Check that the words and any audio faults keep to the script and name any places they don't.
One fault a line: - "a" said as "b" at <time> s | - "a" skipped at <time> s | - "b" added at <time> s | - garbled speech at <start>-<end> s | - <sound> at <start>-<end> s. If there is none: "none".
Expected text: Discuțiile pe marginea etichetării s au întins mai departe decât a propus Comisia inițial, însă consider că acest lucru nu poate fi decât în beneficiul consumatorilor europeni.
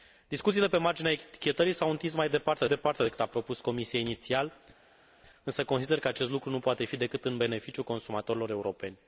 - "departe" added at 2.7 s